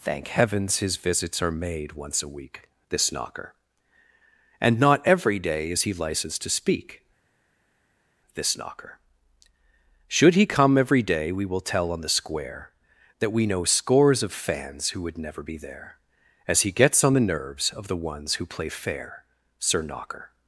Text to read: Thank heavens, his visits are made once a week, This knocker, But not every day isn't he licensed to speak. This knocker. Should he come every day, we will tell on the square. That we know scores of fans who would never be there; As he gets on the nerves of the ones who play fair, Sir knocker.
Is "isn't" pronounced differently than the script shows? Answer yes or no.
yes